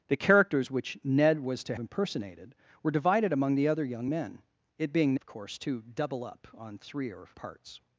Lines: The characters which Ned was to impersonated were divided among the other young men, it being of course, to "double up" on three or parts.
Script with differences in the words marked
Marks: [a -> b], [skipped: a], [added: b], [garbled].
The characters which Ned was to impersonated were divided among the other young men, it being of course, to "double up" on three or parts.